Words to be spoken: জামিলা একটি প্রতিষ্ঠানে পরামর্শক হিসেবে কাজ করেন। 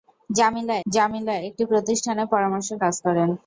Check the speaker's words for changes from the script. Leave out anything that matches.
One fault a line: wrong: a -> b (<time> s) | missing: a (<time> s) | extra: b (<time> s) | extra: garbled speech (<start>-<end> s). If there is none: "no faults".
extra: জামিলা (0.9 s)
missing: হিসেবে (2.8 s)